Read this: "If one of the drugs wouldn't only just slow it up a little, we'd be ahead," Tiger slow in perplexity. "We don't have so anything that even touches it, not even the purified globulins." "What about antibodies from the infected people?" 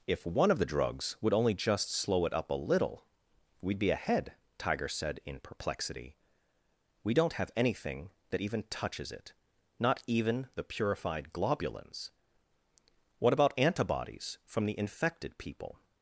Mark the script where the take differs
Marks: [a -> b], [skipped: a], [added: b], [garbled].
"If one of the drugs [wouldn't -> would] only just slow it up a little, we'd be ahead," Tiger [slow -> said] in perplexity. "We don't have [skipped: so] anything that even touches it, not even the purified globulins." "What about antibodies from the infected people?"